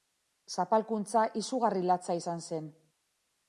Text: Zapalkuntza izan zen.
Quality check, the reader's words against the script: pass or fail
fail